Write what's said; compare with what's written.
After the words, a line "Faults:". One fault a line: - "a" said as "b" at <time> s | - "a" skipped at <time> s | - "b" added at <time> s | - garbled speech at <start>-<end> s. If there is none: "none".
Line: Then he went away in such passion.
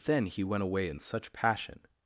Then he went away in such passion.
Faults:
none